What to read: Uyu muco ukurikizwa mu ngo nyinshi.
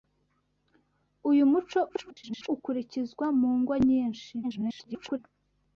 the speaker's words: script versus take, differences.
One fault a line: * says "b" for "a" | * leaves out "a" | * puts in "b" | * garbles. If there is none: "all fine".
* garbles
* garbles